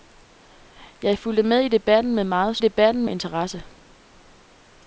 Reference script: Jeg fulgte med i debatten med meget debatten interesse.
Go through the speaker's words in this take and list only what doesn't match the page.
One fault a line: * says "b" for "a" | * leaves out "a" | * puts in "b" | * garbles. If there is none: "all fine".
all fine